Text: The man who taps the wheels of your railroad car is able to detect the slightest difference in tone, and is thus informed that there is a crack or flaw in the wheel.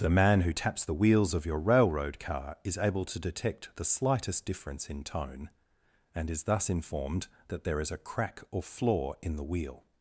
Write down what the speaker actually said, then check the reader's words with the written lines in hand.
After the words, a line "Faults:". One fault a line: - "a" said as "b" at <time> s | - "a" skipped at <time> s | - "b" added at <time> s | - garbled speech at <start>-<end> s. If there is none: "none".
The man who taps the wheels of your railroad car is able to detect the slightest difference in tone, and is thus informed that there is a crack or flaw in the wheel.
Faults:
none